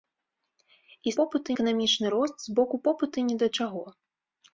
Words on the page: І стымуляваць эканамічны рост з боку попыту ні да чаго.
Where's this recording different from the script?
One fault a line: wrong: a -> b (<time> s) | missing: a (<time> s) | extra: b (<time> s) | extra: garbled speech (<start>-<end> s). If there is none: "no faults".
wrong: стымуляваць -> попыту (1.2 s)